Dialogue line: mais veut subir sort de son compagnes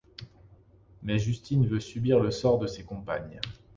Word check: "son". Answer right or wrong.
wrong